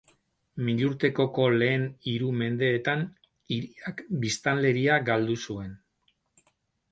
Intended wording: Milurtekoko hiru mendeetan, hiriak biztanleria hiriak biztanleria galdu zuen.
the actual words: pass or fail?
fail